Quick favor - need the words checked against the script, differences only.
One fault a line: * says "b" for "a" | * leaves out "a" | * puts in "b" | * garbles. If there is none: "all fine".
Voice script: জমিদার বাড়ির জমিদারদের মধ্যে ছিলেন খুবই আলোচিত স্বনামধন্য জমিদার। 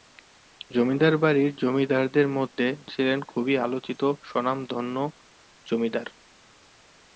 all fine